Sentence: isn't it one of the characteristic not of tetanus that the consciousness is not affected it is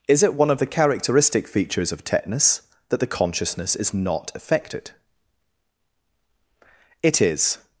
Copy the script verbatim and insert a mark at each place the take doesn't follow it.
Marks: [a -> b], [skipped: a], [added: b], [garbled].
[isn't -> is] it one of the characteristic [not -> features] of tetanus that the consciousness is not affected it is